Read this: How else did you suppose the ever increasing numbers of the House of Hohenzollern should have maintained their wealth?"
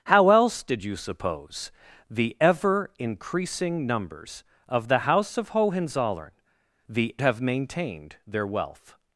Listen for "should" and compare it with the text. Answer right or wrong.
wrong